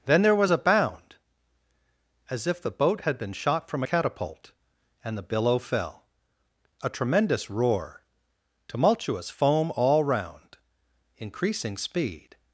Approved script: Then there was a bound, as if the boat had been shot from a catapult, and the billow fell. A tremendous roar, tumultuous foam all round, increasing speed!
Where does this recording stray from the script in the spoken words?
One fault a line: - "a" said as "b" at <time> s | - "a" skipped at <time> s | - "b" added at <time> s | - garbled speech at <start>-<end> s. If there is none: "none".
none